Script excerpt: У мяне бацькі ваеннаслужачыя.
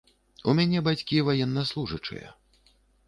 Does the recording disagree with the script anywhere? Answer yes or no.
no